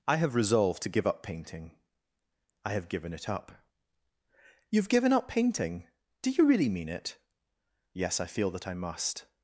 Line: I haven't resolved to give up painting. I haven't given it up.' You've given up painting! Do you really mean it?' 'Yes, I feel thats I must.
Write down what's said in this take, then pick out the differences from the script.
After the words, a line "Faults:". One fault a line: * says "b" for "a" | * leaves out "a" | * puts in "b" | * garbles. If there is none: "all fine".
I have resolved to give up painting. I have given it up.' You've given up painting! Do you really mean it?' 'Yes, I feel that I must.
Faults:
* says "have" for "haven't"
* says "have" for "haven't"
* says "that" for "thats"